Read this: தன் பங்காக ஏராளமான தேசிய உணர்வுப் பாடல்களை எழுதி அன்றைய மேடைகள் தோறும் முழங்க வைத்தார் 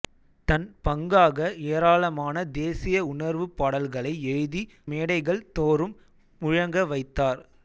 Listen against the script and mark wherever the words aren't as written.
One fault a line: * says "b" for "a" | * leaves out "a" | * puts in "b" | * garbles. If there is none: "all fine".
* leaves out "அன்றைய"